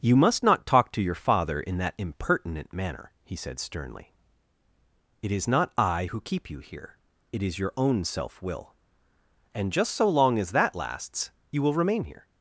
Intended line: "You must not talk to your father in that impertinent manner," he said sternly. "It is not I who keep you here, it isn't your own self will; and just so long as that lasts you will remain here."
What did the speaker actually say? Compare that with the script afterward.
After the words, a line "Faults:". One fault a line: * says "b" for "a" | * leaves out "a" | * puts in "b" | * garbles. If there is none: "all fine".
"You must not talk to your father in that impertinent manner," he said sternly. "It is not I who keep you here, it is your own self will; and just so long as that lasts you will remain here."
Faults:
* says "is" for "isn't"